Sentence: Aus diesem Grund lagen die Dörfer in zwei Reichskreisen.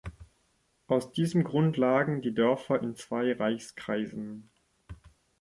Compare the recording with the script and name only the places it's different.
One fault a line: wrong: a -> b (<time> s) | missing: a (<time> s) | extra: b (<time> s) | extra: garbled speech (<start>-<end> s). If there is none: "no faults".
no faults